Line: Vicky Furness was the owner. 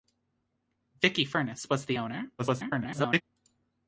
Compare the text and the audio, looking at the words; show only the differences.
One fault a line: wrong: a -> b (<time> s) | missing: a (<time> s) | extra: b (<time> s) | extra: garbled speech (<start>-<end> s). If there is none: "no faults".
extra: garbled speech (2.4-3.2 s)